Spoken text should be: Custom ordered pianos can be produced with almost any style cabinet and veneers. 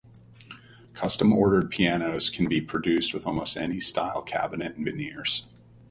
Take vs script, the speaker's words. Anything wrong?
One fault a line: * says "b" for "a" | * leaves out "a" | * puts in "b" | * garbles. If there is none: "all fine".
all fine